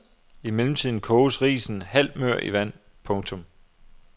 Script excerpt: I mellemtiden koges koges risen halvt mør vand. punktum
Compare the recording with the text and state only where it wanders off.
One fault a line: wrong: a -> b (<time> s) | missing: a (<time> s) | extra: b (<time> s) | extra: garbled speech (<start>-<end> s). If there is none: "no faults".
missing: koges (1.4 s)
extra: i (2.4 s)